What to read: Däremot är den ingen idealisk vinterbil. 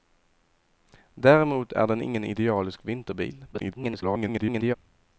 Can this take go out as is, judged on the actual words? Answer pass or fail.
fail